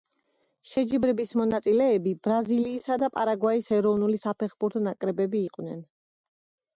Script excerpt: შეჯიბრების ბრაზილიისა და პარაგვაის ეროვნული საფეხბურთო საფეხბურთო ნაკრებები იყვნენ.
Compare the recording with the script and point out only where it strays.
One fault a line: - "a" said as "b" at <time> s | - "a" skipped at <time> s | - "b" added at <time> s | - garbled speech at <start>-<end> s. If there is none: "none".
- "მონაწილეები" added at 1.4 s
- "საფეხბურთო" skipped at 4.8 s